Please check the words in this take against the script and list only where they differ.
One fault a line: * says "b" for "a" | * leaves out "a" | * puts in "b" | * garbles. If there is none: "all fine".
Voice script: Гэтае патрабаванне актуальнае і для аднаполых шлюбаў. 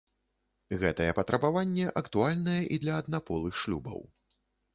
all fine